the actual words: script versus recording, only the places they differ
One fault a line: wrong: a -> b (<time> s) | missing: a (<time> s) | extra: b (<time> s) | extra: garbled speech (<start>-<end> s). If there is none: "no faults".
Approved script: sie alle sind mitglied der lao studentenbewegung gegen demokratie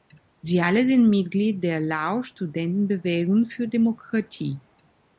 wrong: gegen -> für (3.5 s)